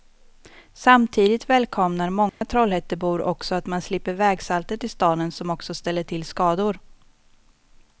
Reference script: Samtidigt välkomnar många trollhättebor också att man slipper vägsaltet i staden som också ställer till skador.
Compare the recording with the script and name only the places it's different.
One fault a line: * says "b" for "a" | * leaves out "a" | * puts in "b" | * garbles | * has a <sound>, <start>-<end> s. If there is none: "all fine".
* has a dropout, 2.3-2.4 s